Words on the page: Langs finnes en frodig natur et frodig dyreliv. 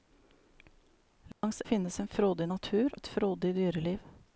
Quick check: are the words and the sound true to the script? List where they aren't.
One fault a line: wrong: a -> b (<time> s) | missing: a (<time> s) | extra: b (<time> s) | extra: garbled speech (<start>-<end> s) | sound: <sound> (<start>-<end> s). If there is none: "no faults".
sound: dropout (1.3-1.4 s)